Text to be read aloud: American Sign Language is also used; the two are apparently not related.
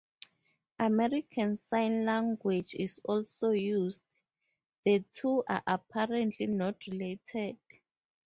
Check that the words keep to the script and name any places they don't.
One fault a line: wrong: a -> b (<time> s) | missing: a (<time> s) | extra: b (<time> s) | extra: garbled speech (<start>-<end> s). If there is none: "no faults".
no faults